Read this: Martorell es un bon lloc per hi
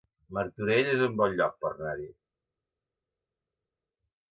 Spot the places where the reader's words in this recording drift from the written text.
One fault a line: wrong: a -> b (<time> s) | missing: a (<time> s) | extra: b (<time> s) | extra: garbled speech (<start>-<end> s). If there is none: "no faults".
extra: anar (1.8 s)